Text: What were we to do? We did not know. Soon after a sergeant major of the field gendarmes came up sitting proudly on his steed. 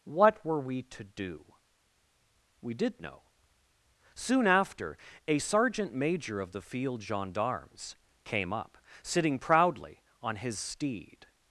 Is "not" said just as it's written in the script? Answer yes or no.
no